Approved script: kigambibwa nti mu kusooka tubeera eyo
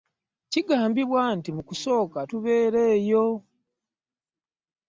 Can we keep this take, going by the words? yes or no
yes